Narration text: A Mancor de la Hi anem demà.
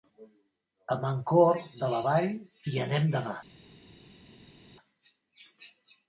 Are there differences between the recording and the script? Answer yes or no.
yes